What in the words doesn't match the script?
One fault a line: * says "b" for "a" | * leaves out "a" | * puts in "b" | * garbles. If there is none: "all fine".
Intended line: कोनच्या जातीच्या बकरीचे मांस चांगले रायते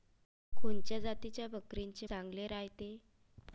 * leaves out "मांस"